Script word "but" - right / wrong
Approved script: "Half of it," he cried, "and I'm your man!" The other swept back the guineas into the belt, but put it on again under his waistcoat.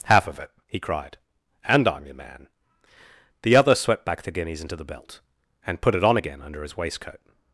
wrong